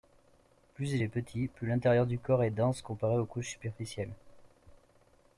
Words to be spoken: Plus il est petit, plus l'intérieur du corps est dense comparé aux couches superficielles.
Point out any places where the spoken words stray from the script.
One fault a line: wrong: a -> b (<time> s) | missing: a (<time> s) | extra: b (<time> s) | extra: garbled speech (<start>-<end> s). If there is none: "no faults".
no faults